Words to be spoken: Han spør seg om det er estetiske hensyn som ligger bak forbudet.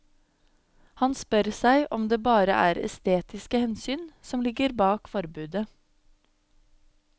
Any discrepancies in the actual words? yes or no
yes